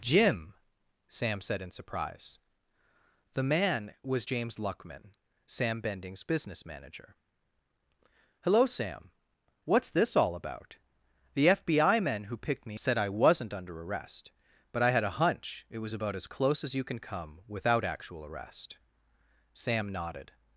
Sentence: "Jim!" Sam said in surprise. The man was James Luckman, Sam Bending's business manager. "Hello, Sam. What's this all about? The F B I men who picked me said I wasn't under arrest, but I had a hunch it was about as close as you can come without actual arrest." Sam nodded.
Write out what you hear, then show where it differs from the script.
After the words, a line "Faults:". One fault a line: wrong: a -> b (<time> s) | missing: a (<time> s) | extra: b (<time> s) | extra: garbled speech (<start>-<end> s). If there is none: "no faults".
"Jim!" Sam said in surprise. The man was James Luckman, Sam Bending's business manager. "Hello, Sam. What's this all about? The F B I men who picked me said I wasn't under arrest, but I had a hunch it was about as close as you can come without actual arrest." Sam nodded.
Faults:
no faults